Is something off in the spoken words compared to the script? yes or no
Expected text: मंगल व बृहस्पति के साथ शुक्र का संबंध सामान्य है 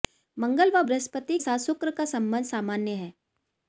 yes